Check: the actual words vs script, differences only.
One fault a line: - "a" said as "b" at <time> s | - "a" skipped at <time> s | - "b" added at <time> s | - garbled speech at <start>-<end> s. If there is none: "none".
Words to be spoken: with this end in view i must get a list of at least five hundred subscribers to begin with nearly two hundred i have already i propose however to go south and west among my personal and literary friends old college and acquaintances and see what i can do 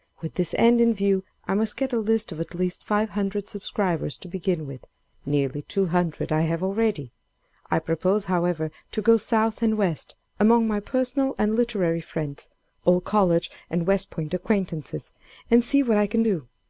- "west point" added at 13.9 s